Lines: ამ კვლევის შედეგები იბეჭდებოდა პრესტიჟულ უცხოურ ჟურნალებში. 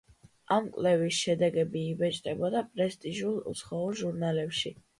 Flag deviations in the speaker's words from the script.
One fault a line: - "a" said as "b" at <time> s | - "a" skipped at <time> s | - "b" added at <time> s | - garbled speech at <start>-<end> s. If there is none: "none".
none